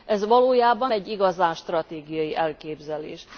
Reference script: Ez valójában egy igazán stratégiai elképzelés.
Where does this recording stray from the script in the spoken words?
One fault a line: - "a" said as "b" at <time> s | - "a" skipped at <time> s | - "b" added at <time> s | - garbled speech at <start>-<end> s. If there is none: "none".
none